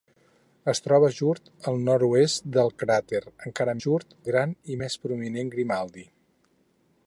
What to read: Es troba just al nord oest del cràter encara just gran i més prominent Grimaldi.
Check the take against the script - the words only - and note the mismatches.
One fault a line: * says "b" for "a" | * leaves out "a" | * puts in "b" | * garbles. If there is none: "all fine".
all fine